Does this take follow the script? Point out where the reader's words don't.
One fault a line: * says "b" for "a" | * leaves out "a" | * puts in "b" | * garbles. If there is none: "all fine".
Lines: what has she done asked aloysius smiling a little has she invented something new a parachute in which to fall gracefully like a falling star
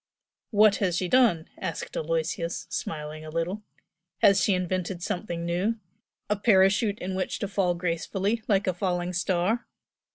all fine